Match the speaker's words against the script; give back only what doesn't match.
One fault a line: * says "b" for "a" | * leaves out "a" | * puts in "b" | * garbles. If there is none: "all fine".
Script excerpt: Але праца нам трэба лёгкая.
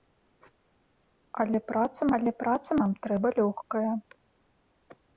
* puts in "але праца"